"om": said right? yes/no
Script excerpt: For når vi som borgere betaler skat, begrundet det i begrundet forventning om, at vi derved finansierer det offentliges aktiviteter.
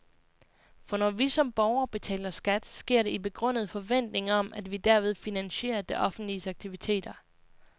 yes